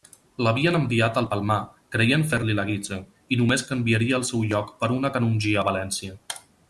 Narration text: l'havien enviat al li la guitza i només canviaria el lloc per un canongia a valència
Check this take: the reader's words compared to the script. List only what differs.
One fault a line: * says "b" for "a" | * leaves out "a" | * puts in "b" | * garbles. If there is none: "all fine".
* puts in "palmar creient fer"
* puts in "seu"
* says "una" for "un"